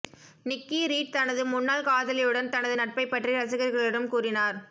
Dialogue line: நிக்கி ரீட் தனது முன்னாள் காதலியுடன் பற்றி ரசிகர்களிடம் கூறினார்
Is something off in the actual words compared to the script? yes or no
yes